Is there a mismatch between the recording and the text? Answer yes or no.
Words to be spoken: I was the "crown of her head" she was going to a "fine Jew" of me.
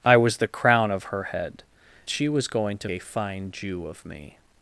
no